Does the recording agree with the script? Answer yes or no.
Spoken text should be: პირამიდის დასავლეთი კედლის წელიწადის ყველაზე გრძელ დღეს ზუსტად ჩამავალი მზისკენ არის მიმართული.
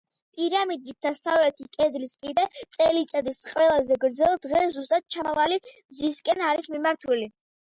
no